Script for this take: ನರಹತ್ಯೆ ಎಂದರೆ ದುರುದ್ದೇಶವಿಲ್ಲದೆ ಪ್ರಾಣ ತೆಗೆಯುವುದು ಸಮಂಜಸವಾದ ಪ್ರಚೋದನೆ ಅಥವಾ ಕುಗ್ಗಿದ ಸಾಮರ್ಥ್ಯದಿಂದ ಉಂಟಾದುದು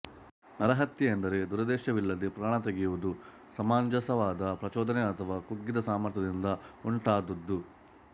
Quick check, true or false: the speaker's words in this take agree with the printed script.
true